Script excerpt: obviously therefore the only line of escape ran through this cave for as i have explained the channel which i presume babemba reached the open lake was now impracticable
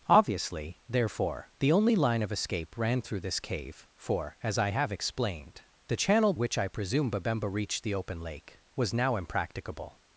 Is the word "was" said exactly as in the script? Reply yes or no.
yes